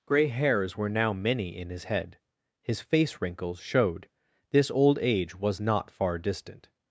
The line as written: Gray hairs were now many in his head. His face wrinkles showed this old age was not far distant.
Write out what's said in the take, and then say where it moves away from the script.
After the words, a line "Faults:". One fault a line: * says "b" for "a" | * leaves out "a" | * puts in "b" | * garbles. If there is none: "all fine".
Gray hairs were now many in his head. His face wrinkles showed this old age was not far distant.
Faults:
all fine